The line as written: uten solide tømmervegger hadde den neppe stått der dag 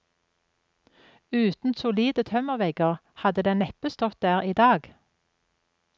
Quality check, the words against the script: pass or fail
fail